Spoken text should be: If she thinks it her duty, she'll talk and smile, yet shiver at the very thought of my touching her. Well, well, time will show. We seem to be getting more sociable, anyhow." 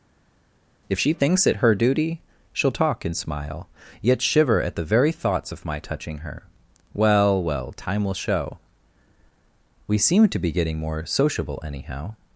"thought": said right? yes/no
no